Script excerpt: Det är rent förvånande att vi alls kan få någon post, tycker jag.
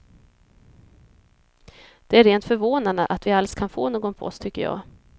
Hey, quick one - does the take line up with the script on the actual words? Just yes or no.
yes